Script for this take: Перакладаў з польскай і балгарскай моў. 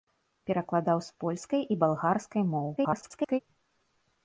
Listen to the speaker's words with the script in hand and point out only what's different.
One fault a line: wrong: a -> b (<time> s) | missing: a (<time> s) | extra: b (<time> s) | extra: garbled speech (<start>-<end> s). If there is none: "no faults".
extra: garbled speech (2.8-3.4 s)